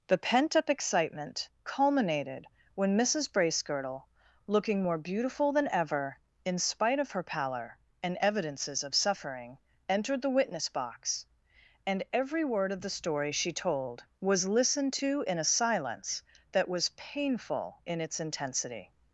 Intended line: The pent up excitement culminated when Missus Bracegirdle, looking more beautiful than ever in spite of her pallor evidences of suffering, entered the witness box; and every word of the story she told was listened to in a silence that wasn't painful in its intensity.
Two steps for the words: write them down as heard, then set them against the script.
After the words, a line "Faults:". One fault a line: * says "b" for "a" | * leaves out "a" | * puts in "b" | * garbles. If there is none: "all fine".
The pent up excitement culminated when Missus Bracegirdle, looking more beautiful than ever in spite of her pallor and evidences of suffering, entered the witness box; and every word of the story she told was listened to in a silence that was painful in its intensity.
Faults:
* puts in "and"
* says "was" for "wasn't"